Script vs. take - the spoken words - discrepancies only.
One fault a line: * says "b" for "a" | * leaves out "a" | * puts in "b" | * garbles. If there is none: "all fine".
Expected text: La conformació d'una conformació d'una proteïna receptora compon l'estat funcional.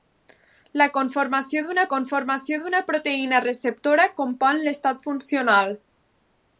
all fine